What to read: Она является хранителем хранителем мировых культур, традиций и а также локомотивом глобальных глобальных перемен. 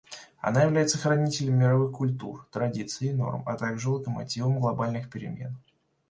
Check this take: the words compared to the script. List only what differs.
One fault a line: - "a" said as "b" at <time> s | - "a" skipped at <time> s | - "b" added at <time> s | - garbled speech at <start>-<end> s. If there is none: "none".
- "хранителем" skipped at 1.6 s
- "норм" added at 3.1 s
- "глобальных" skipped at 5.1 s